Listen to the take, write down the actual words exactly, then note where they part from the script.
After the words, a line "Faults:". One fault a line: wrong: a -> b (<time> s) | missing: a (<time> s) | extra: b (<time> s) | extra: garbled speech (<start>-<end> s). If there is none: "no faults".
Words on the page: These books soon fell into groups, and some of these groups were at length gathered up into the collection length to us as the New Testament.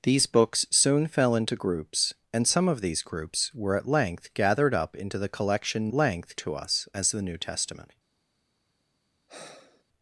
These books soon fell into groups, and some of these groups were at length gathered up into the collection length to us as the New Testament.
Faults:
no faults